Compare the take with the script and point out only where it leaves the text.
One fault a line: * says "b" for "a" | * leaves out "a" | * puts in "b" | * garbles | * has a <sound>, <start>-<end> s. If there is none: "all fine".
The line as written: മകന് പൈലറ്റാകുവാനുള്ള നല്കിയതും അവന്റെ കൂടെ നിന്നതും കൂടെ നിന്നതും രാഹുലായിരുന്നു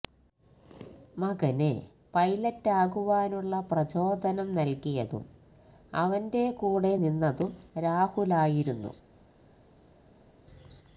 * puts in "പ്രചോദനം"
* leaves out "കൂടെ നിന്നതും"